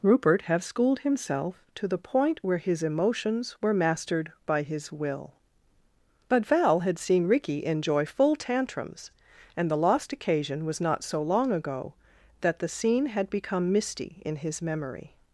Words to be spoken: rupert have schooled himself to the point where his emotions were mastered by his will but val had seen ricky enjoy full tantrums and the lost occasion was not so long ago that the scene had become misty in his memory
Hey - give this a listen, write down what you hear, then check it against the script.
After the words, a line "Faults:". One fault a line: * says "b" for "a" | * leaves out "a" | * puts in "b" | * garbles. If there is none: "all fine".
rupert have schooled himself to the point where his emotions were mastered by his will but val had seen ricky enjoy full tantrums and the lost occasion was not so long ago that the scene had become misty in his memory
Faults:
all fine